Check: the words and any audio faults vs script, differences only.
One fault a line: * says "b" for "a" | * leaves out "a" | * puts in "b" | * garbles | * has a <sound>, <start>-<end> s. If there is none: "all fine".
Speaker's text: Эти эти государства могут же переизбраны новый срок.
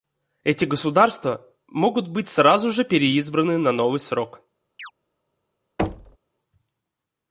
* leaves out "эти"
* puts in "быть сразу"
* puts in "на"
* has a chirp, 4.8-4.9 s
* has a thud, 5.8-6.2 s